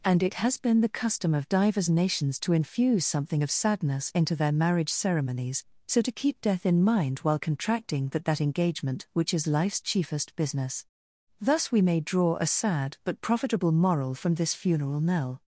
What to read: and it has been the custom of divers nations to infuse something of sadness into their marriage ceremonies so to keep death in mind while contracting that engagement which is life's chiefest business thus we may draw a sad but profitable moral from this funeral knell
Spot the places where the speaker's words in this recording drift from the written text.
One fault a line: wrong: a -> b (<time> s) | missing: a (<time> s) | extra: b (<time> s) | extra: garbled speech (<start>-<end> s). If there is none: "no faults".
extra: that (8.2 s)